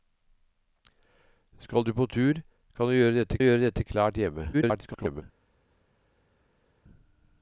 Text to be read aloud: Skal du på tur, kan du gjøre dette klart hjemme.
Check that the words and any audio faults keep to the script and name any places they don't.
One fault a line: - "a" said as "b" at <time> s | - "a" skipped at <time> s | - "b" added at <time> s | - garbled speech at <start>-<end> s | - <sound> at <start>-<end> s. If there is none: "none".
- "gjøre dette" added at 3.4 s
- garbled speech at 4.5-5.2 s